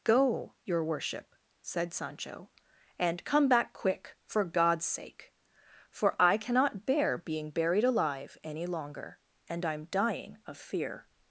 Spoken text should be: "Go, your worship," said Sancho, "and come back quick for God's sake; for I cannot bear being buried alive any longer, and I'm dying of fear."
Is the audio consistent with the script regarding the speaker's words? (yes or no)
yes